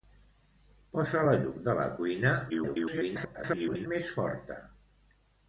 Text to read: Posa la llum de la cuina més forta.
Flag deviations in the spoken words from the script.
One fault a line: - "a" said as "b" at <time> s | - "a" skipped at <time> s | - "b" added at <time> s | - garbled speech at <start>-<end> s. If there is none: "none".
- garbled speech at 2.5-3.9 s